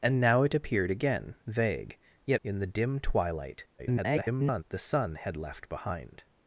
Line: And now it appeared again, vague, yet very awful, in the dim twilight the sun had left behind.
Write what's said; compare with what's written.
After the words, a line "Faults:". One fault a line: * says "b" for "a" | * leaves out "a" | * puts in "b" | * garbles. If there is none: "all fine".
And now it appeared again, vague, yet in the dim twilight [garbled] the sun had left behind.
Faults:
* leaves out "very awful"
* garbles